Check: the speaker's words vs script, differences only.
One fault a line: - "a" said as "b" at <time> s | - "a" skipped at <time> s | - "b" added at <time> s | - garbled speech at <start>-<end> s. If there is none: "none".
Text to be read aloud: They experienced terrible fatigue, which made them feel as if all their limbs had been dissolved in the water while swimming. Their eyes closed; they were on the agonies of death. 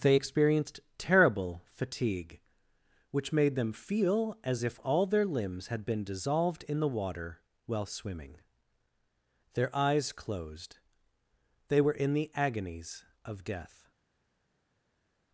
- "on" said as "in" at 12.0 s